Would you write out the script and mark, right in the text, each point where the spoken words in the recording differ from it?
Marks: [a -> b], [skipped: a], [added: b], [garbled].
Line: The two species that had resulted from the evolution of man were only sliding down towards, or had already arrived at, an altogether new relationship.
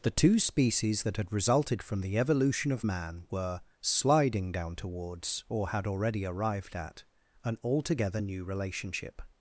The two species that had resulted from the evolution of man were [skipped: only] sliding down towards, or had already arrived at, an altogether new relationship.